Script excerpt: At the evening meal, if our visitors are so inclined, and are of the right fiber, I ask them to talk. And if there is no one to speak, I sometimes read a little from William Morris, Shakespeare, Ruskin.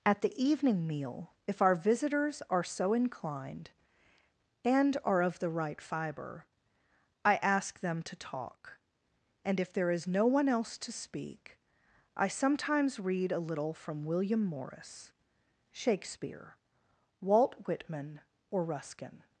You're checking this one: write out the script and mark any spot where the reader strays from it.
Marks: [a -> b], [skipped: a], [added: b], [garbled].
At the evening meal, if our visitors are so inclined, and are of the right fiber, I ask them to talk. And if there is no one [added: else] to speak, I sometimes read a little from William Morris, Shakespeare, [added: Walt Whitman or] Ruskin.